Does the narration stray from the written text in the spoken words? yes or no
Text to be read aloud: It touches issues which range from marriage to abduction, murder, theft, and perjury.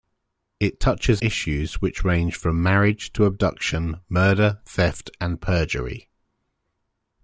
no